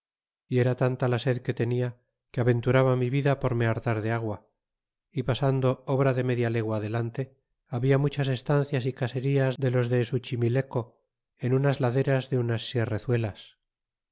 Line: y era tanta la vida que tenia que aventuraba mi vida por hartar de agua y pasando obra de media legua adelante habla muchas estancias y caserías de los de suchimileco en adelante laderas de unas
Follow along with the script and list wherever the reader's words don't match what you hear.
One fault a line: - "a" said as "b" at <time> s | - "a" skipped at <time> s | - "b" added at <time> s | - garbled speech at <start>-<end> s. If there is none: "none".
- "vida" said as "sed" at 1.2 s
- "me" added at 3.5 s
- "adelante" said as "unas" at 11.5 s